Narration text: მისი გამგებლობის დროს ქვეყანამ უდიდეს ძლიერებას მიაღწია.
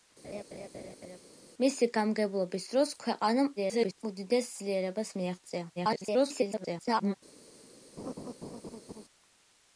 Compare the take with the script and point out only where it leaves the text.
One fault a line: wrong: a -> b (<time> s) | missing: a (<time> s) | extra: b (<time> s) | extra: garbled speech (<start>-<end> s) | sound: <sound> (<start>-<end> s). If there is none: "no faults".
sound: laugh (0.2-1.2 s)
extra: garbled speech (3.6-4.0 s)
extra: garbled speech (5.8-7.1 s)
sound: laugh (8.0-9.0 s)